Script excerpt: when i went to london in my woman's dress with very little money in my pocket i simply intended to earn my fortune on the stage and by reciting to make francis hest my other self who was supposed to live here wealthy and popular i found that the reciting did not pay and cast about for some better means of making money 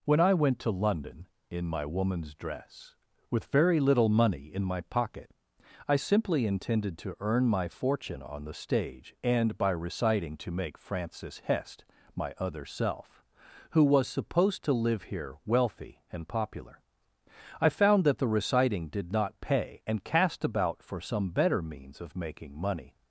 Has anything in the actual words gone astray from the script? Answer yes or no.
no